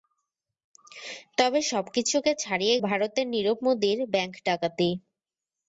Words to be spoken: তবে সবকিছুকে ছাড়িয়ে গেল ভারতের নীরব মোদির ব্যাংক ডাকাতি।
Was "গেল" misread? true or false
true